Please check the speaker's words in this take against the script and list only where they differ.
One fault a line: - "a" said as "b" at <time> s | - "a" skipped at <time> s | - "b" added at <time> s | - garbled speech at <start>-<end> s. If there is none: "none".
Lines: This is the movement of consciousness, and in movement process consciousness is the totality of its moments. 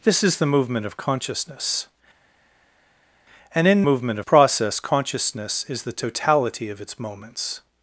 none